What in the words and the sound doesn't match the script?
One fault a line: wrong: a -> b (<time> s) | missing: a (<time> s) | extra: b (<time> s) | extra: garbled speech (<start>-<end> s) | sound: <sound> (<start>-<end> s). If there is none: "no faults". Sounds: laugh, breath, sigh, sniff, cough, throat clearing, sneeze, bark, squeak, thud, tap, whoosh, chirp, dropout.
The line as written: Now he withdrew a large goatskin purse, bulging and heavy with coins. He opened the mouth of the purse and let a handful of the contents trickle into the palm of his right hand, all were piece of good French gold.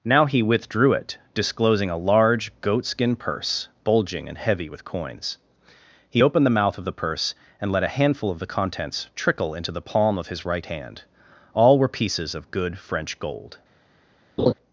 extra: it disclosing (0.9 s)
wrong: piece -> pieces (11.9 s)
sound: laugh (14.4-14.5 s)